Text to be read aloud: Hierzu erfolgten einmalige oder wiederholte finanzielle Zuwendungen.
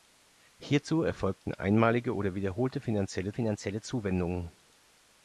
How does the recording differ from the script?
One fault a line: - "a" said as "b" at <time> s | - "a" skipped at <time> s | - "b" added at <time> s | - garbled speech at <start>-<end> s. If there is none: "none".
- "finanzielle" added at 3.3 s